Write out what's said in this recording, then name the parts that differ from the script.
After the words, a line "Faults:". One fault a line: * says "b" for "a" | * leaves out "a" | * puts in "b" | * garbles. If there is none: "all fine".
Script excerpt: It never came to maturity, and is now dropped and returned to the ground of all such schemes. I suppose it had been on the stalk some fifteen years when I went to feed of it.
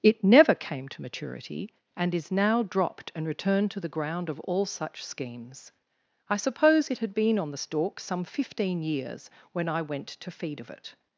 It never came to maturity, and is now dropped and returned to the ground of all such schemes. I suppose it had been on the stalk some fifteen years when I went to feed of it.
Faults:
all fine